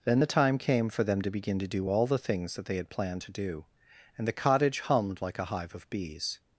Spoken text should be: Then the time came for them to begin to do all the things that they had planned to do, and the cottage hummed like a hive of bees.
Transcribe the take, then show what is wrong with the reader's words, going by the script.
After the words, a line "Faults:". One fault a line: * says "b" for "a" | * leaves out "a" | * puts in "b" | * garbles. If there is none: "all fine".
Then the time came for them to begin to do all the things that they had planned to do, and the cottage hummed like a hive of bees.
Faults:
all fine